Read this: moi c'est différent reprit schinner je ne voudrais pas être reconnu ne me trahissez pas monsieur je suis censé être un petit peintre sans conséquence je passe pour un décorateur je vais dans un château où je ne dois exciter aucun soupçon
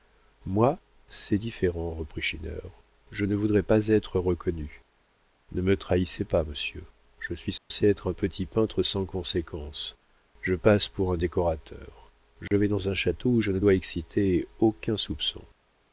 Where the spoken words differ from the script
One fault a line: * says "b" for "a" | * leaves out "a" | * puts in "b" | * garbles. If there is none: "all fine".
all fine